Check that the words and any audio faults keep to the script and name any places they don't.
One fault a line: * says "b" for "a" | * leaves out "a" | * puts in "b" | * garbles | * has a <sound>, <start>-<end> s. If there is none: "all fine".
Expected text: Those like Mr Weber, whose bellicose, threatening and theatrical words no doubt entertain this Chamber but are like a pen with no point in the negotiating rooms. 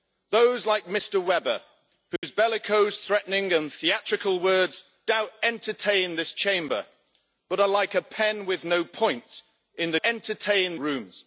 * has a dropout, 2.2-2.2 s
* leaves out "no"
* says "entertain" for "negotiating"